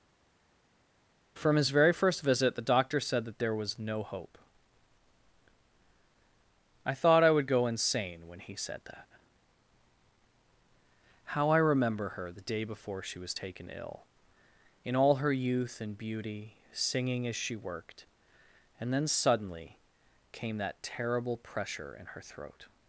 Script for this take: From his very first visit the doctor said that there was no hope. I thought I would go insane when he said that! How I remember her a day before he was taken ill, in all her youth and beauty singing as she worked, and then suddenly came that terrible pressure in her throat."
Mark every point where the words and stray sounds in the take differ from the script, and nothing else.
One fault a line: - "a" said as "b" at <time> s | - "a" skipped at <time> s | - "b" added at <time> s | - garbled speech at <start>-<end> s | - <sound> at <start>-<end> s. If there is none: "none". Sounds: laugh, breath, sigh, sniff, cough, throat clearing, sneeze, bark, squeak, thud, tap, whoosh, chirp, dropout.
- "a" said as "the" at 12.3 s
- "he" said as "she" at 13.0 s